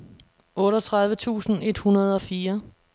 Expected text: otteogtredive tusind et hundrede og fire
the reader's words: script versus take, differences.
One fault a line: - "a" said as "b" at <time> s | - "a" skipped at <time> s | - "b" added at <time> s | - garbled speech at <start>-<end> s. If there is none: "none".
none